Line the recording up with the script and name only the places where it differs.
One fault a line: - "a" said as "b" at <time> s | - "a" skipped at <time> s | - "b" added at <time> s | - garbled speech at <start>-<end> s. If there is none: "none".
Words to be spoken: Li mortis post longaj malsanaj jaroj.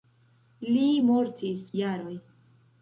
- "post longaj malsanaj" skipped at 1.6 s